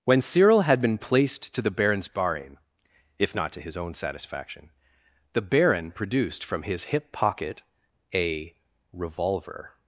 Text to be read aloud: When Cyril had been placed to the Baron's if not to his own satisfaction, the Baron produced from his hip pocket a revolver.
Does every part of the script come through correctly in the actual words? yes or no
no